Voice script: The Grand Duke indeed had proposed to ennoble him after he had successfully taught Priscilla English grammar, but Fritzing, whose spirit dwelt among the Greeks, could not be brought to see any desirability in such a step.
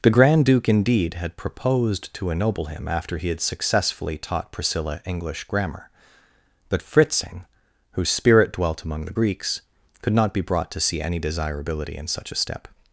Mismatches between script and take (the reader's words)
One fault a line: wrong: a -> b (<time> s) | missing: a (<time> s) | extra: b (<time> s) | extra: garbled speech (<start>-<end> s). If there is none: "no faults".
no faults